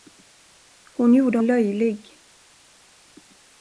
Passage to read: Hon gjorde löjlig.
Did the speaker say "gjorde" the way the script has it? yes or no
yes